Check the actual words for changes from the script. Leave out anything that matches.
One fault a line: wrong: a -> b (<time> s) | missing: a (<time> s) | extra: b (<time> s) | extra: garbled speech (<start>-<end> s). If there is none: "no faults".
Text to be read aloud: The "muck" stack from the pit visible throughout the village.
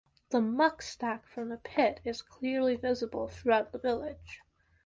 extra: is clearly (2.0 s)